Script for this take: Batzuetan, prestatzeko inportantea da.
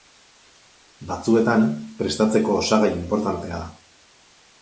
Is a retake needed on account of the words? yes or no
yes